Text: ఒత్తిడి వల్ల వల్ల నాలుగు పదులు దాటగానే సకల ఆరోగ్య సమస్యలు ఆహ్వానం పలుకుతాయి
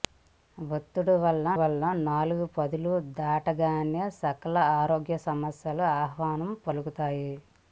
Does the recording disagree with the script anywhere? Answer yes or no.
no